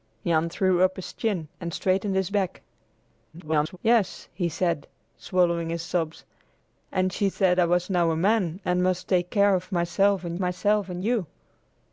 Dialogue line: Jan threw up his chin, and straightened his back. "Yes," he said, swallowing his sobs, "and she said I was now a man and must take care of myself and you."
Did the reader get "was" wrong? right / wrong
right